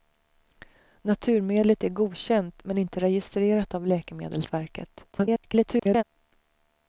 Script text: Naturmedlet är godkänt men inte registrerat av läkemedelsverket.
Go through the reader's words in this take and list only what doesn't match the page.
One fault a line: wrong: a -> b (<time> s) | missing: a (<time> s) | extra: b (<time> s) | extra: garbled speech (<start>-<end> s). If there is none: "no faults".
extra: garbled speech (5.1-6.0 s)